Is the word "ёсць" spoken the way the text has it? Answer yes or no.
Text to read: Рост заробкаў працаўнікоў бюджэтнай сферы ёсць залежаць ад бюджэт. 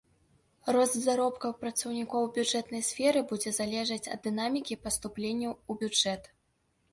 no